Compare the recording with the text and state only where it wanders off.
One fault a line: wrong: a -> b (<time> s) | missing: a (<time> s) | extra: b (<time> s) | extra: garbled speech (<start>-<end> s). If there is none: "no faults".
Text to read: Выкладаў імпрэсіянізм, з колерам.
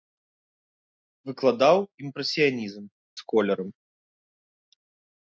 no faults